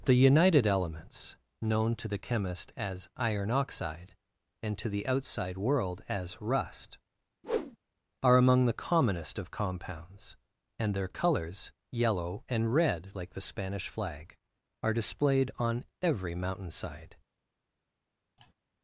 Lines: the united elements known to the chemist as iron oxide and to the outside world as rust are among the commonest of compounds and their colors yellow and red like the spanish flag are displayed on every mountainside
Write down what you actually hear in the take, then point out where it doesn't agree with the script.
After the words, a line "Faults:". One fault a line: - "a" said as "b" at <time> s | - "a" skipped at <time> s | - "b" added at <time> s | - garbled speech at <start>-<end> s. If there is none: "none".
the united elements known to the chemist as iron oxide and to the outside world as rust are among the commonest of compounds and their colors yellow and red like the spanish flag are displayed on every mountainside
Faults:
none